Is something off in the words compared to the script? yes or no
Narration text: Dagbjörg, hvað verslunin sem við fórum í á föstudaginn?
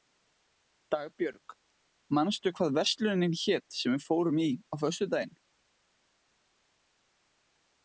yes